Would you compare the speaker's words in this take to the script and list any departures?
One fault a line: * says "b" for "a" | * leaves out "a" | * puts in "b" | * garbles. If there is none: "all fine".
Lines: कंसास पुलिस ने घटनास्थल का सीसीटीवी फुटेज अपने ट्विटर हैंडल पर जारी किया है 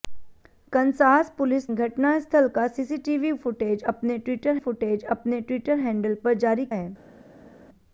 * leaves out "ने"
* puts in "फुटेज अपने ट्विटर"
* leaves out "किया"